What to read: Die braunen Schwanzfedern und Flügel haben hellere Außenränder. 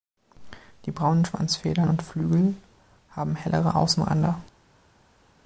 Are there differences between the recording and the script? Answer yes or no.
no